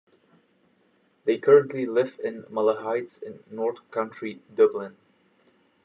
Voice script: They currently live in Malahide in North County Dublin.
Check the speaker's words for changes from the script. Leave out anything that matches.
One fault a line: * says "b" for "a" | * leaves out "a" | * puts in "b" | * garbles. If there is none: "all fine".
all fine